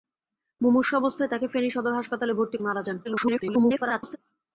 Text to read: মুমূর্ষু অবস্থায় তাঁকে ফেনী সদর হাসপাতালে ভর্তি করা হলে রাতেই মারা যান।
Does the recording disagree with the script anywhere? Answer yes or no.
yes